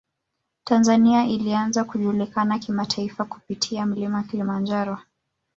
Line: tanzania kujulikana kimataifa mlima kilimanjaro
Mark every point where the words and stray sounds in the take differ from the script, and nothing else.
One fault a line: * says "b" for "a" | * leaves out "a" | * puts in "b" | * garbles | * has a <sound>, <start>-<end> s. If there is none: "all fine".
* puts in "ilianza"
* puts in "kupitia"